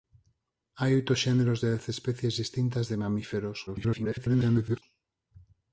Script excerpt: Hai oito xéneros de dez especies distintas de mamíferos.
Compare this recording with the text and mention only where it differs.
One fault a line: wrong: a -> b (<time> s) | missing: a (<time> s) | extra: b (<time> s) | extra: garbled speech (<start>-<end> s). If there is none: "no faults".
extra: garbled speech (3.7-4.8 s)